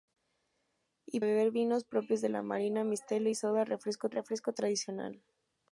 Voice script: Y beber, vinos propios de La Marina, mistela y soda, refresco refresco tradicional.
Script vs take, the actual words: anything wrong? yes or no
no